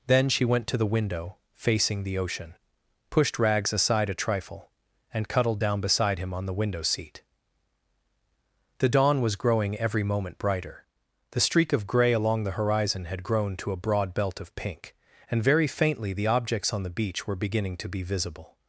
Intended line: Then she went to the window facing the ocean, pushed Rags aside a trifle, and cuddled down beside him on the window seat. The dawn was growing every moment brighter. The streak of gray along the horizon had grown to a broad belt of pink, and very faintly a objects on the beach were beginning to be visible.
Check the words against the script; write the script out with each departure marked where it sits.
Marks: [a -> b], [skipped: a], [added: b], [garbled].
Then she went to the window facing the ocean, pushed Rags aside a trifle, and cuddled down beside him on the window seat. The dawn was growing every moment brighter. The streak of gray along the horizon had grown to a broad belt of pink, and very faintly [a -> the] objects on the beach were beginning to be visible.